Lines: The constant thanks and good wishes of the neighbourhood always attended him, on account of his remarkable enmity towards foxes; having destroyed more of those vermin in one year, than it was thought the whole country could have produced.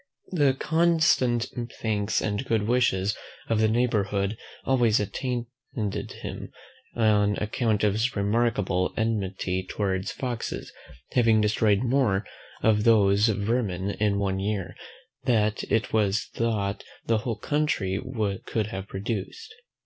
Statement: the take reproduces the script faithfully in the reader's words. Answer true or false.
true